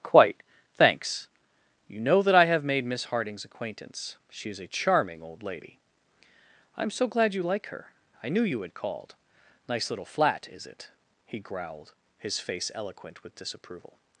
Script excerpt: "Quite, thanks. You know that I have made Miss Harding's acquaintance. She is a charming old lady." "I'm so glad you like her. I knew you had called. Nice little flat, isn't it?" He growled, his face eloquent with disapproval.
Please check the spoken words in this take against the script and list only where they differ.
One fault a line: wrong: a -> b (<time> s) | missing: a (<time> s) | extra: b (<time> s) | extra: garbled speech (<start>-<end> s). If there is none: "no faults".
wrong: isn't -> is (10.5 s)